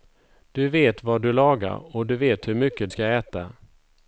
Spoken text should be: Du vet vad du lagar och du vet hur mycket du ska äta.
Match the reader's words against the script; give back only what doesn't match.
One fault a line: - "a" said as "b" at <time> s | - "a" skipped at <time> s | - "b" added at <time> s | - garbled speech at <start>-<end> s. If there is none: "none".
- "du" skipped at 2.9 s